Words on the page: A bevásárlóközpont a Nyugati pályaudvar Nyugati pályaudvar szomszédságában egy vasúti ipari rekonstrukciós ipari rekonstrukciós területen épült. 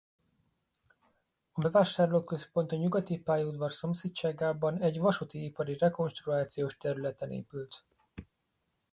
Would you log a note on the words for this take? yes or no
yes